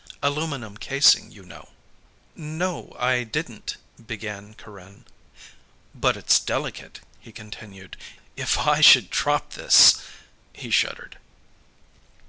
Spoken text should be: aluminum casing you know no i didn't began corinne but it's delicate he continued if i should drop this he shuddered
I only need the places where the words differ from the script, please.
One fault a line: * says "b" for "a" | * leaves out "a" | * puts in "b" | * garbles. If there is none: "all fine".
all fine